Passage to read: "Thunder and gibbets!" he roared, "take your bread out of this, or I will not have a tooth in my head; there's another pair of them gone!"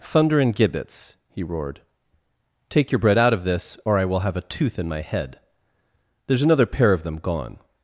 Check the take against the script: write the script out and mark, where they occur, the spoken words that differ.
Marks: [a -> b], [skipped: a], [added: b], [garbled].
"Thunder and gibbets!" he roared, "take your bread out of this, or I will [skipped: not] have a tooth in my head; there's another pair of them gone!"